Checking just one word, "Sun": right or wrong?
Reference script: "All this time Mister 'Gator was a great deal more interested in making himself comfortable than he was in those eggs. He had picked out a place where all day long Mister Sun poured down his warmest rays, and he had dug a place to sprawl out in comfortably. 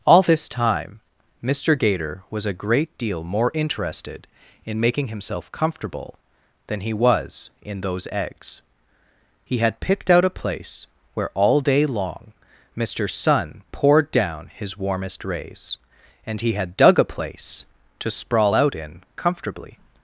right